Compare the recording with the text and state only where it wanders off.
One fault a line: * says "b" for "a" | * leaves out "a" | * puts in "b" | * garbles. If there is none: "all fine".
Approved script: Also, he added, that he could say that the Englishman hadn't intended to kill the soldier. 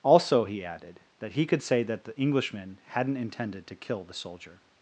all fine